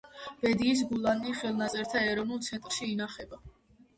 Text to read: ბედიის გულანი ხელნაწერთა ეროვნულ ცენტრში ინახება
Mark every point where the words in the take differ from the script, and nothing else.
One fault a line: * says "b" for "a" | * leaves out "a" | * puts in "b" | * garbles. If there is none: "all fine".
all fine